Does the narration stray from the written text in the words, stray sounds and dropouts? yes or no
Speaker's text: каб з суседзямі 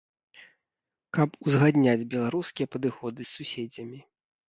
yes